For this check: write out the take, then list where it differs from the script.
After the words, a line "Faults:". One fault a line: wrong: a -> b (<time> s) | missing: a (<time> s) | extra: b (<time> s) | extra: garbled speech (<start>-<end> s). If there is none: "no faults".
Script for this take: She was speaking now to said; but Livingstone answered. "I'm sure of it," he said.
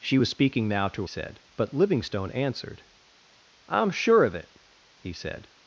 She was speaking now to said; but Livingstone answered. "I'm sure of it," he said.
Faults:
no faults